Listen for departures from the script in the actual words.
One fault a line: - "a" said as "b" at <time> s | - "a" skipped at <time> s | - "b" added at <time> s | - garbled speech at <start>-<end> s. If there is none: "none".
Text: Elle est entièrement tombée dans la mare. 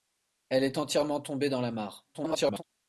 - garbled speech at 2.1-2.6 s